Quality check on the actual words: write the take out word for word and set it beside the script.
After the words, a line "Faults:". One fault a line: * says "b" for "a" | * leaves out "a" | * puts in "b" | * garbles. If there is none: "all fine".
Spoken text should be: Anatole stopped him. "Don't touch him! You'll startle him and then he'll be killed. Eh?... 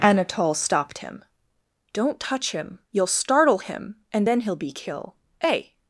Anatole stopped him. "Don't touch him! You'll startle him and then he'll be kill. Eh?...
Faults:
* says "kill" for "killed"